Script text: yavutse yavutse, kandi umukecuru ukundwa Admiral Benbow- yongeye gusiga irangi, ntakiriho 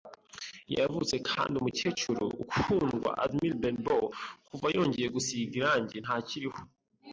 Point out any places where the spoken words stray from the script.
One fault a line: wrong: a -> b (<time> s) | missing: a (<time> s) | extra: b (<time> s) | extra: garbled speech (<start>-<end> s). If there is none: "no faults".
missing: yavutse (1.1 s)
extra: kuva (4.5 s)